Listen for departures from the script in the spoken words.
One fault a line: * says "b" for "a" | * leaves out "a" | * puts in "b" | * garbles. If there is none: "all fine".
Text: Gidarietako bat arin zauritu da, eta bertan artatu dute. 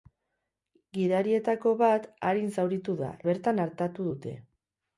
* leaves out "eta"